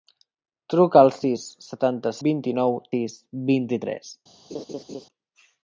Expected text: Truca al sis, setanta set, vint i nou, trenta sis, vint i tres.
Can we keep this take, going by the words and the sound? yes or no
no